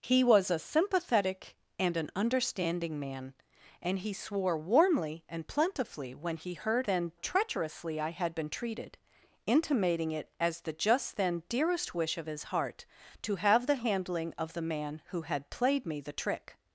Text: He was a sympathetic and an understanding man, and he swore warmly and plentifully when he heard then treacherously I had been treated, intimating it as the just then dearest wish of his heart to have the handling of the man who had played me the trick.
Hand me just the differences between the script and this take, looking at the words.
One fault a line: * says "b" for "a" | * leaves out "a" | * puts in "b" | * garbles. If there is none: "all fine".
all fine